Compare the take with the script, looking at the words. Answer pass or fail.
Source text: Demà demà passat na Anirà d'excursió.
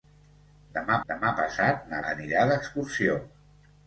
pass